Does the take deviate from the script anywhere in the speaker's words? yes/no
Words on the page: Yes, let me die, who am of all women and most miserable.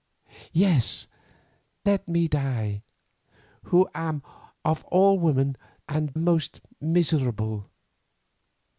no